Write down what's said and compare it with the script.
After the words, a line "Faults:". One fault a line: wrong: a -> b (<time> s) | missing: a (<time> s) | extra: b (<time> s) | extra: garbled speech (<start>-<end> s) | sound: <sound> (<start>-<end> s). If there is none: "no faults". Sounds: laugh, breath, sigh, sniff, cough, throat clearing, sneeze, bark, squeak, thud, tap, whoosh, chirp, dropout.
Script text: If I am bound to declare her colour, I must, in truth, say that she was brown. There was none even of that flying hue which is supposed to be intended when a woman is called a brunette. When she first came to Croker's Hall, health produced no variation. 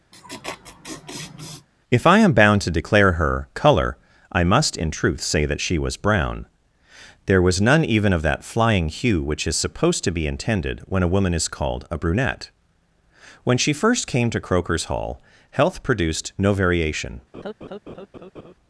If I am bound to declare her colour, I must, in truth, say that she was brown. There was none even of that flying hue which is supposed to be intended when a woman is called a brunette. When she first came to Croker's Hall, health produced no variation.
Faults:
sound: laugh (0.1-1.7 s)
sound: laugh (17.3-18.5 s)